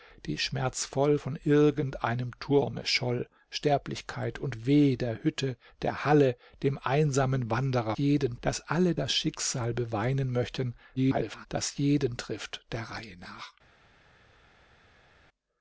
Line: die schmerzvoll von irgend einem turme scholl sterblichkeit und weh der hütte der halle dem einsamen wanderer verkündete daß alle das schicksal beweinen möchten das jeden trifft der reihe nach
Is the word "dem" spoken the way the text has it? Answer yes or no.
yes